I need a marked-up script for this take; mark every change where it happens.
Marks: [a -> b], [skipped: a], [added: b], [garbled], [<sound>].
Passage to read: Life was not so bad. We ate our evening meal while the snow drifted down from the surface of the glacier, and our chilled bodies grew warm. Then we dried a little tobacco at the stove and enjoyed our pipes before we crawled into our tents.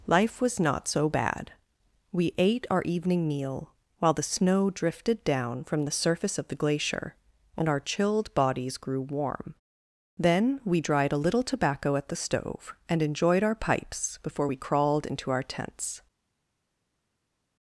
Life was not so bad. We ate our evening meal while the snow drifted down from the surface of the glacier, and our chilled bodies grew warm. Then we dried a little tobacco at the stove and enjoyed our pipes before we crawled into our tents.